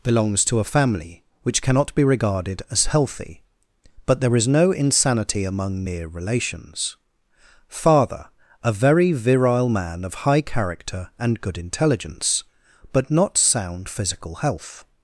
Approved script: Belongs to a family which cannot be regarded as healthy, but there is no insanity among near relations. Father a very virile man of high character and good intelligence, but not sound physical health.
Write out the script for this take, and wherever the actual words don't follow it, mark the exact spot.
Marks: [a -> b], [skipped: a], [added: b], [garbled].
Belongs to a family which cannot be regarded as healthy, but there is no insanity among near relations. Father a very virile man of high character and good intelligence, but not sound physical health.